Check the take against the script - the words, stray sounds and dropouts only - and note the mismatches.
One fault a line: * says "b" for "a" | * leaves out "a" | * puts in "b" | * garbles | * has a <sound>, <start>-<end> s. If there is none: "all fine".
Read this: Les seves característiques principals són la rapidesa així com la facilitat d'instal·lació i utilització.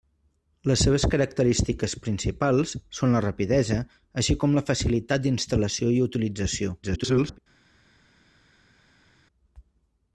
* garbles